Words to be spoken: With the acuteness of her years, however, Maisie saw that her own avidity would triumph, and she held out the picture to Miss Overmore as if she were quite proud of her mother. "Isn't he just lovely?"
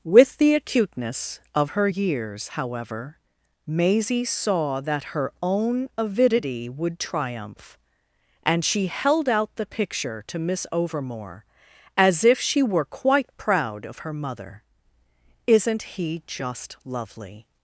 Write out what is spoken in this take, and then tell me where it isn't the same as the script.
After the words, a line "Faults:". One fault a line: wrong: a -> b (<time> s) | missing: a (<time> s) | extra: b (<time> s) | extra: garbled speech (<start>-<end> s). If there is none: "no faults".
With the acuteness of her years, however, Maisie saw that her own avidity would triumph, and she held out the picture to Miss Overmore as if she were quite proud of her mother. "Isn't he just lovely?"
Faults:
no faults